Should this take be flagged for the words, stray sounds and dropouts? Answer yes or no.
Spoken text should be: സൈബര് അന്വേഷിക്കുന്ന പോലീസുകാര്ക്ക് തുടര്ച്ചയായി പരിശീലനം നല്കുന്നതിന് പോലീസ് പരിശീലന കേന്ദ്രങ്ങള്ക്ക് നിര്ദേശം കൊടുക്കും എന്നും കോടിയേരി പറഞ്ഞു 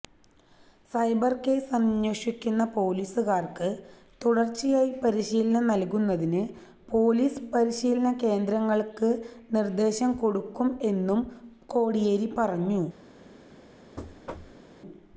yes